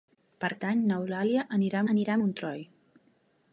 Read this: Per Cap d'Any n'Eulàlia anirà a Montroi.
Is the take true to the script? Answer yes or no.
no